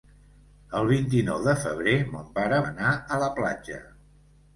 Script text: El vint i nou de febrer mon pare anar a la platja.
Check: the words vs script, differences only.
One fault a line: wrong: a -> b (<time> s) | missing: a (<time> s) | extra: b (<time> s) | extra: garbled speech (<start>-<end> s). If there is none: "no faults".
no faults